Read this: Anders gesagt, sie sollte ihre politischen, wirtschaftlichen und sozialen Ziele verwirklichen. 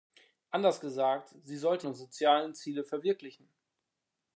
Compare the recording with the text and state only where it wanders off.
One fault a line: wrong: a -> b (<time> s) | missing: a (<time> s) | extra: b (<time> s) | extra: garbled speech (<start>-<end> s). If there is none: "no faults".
missing: ihre politischen wirtschaftlichen (1.9 s)